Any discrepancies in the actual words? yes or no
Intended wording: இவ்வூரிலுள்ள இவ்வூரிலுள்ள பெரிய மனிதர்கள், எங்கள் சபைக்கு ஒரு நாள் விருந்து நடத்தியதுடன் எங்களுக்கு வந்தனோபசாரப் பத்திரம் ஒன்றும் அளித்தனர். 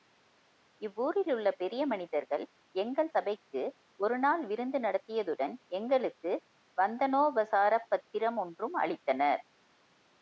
yes